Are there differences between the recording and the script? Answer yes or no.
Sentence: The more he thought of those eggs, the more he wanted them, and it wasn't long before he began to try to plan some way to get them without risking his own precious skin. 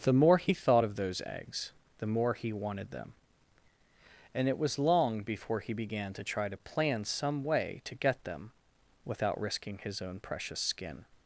yes